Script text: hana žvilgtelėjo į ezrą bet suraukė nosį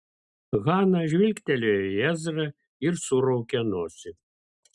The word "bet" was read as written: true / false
false